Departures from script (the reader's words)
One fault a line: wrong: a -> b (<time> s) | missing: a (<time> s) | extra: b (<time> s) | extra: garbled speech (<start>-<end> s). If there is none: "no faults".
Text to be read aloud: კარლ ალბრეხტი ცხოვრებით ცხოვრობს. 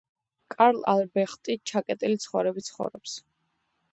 extra: ჩაკეტილი (1.7 s)